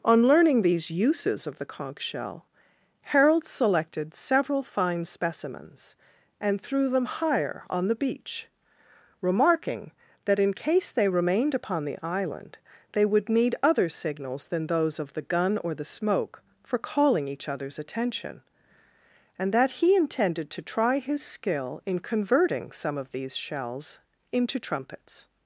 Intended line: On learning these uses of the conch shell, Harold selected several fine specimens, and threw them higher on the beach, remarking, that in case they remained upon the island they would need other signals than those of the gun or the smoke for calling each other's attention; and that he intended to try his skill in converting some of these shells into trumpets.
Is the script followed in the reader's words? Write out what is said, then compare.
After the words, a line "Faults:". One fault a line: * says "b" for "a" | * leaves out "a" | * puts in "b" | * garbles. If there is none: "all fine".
On learning these uses of the conch shell, Harold selected several fine specimens, and threw them higher on the beach, remarking, that in case they remained upon the island they would need other signals than those of the gun or the smoke for calling each other's attention; and that he intended to try his skill in converting some of these shells into trumpets.
Faults:
all fine